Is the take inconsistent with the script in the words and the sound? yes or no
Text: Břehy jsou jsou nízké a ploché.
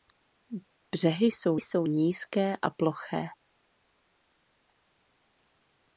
no